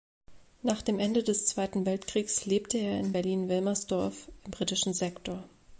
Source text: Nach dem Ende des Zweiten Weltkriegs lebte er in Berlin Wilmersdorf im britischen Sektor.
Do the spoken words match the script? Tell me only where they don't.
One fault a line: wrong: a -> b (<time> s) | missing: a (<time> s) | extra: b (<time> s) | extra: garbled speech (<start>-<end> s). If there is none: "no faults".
no faults